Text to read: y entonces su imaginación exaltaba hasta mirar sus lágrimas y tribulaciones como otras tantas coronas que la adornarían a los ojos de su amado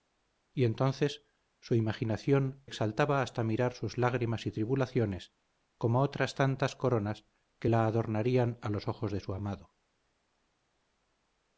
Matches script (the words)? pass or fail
pass